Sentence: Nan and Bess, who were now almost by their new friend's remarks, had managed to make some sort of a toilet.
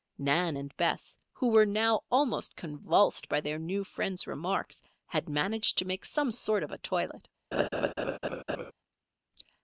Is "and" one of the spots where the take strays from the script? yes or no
no